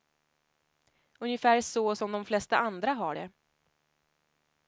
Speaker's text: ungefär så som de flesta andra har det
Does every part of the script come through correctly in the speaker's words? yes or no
yes